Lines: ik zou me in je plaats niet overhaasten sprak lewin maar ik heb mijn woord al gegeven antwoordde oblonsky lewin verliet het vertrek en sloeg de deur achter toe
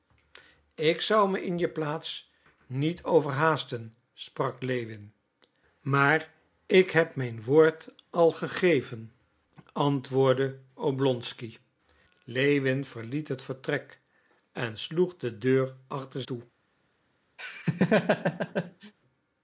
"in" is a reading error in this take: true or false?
false